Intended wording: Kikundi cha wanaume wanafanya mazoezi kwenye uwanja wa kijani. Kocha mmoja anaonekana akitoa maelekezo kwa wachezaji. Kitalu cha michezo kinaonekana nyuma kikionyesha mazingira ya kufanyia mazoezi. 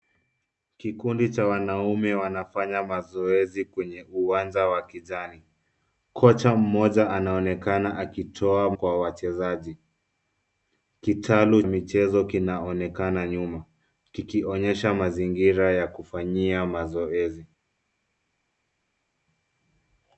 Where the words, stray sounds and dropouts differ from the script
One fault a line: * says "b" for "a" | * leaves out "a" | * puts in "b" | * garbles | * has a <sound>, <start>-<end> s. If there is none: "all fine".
* leaves out "maelekezo"
* leaves out "cha"